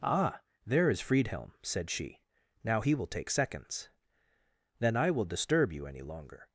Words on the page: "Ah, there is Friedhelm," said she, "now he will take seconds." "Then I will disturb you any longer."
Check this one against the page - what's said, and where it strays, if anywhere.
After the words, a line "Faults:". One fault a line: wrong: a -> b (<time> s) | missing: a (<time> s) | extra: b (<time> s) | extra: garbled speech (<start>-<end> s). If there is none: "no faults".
"Ah, there is Friedhelm," said she, "now he will take seconds." "Then I will disturb you any longer."
Faults:
no faults